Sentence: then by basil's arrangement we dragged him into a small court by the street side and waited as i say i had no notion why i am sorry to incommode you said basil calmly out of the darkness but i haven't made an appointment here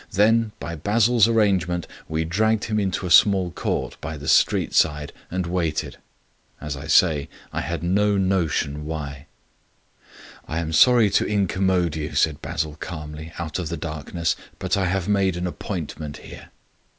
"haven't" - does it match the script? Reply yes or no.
no